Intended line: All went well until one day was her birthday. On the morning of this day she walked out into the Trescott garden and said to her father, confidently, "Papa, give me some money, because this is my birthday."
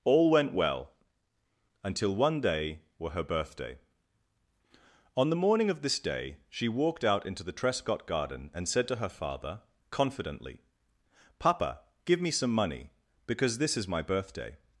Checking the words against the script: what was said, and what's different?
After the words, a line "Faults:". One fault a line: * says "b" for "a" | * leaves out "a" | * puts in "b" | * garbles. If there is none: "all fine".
All went well until one day were her birthday. On the morning of this day she walked out into the Trescott garden and said to her father, confidently, "Papa, give me some money, because this is my birthday."
Faults:
* says "were" for "was"